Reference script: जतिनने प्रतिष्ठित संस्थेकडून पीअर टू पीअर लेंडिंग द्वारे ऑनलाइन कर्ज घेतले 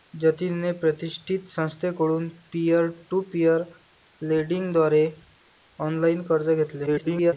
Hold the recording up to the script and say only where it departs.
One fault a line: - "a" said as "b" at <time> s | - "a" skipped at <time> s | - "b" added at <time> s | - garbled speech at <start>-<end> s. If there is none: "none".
- garbled speech at 6.9-7.3 s